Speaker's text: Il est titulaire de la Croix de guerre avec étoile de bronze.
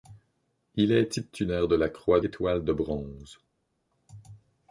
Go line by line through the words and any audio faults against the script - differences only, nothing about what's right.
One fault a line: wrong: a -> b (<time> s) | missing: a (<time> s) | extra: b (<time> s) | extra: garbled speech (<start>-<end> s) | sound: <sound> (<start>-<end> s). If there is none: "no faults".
missing: de guerre avec (2.2 s)